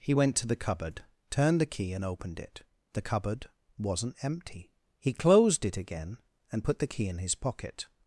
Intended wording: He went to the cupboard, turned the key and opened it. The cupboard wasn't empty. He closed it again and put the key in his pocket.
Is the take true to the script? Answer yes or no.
yes